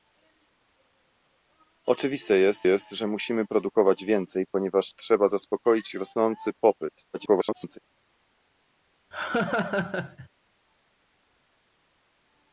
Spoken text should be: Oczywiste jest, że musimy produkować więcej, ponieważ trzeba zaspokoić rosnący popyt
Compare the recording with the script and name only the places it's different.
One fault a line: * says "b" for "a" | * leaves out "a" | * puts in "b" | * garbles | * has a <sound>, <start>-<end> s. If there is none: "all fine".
* puts in "jest"
* garbles
* has a laugh, 9.1-10.3 s